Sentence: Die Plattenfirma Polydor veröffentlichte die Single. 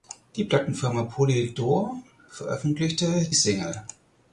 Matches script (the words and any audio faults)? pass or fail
fail